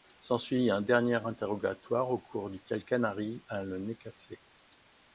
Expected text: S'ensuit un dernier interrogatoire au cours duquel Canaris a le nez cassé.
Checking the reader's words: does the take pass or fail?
pass